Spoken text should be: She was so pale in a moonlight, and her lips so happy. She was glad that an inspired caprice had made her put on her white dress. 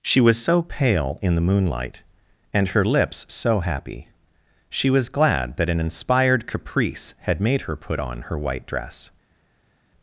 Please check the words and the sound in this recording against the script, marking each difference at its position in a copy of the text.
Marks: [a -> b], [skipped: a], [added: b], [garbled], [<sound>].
She was so pale in [a -> the] moonlight, and her lips so happy. She was glad that an inspired caprice had made her put on her white dress.